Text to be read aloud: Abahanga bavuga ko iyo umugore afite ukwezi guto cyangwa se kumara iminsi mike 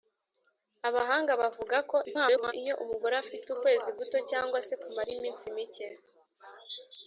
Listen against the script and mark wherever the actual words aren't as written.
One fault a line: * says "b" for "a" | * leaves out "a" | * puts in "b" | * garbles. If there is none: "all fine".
* garbles